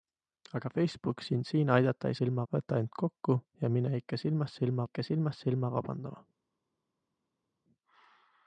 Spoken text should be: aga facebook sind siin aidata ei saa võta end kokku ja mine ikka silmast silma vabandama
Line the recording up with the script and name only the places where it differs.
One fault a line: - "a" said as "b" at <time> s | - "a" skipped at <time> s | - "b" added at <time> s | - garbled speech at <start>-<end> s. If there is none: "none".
- "saa" said as "silma" at 2.2 s
- "ikka silmast silma" added at 4.8 s